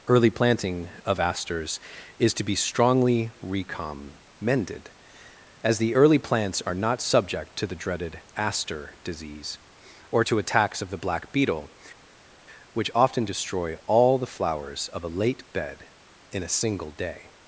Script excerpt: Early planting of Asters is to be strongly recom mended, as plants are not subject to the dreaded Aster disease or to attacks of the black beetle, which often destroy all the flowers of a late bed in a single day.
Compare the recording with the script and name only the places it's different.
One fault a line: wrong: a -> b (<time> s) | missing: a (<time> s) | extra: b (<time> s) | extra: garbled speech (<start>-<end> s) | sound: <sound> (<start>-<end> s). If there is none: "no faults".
extra: the early (5.8 s)